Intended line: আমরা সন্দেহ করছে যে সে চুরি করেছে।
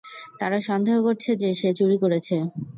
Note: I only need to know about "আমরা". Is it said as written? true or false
false